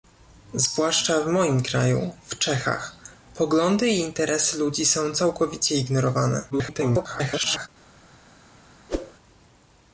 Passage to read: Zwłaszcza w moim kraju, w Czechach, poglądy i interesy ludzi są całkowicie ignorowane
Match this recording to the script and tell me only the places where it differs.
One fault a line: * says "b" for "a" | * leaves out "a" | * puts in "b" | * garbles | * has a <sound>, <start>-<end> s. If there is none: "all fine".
* garbles
* has a whoosh, 8.9-9.1 s